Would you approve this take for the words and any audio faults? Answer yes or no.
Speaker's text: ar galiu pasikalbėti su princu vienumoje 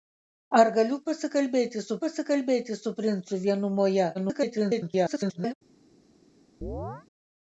no